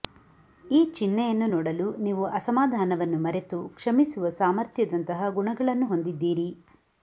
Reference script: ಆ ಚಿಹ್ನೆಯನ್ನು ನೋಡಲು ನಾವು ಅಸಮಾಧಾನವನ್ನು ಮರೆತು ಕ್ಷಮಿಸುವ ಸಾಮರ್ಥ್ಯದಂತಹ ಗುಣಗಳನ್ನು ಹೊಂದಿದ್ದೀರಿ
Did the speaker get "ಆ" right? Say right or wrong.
wrong